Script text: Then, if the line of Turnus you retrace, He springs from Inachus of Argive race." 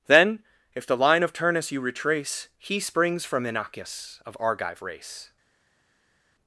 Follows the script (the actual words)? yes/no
yes